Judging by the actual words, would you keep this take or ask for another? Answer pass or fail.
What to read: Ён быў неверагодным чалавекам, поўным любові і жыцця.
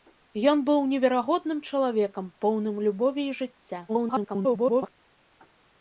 fail